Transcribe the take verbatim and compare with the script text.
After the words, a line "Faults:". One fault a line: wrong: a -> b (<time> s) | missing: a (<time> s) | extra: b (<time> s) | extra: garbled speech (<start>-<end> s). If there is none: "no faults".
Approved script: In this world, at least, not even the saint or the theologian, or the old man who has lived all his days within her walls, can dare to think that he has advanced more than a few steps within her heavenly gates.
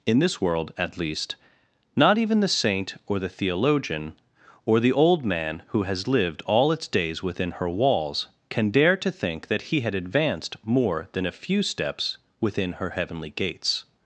In this world, at least, not even the saint or the theologian, or the old man who has lived all its days within her walls, can dare to think that he had advanced more than a few steps within her heavenly gates.
Faults:
wrong: his -> its (6.7 s)
wrong: has -> had (9.8 s)